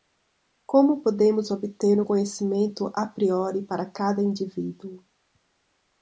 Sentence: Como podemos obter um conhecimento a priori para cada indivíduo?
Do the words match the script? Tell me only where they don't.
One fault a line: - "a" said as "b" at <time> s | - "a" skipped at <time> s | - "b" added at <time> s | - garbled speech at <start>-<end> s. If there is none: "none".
none